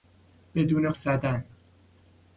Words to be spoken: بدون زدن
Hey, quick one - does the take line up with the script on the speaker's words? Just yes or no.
yes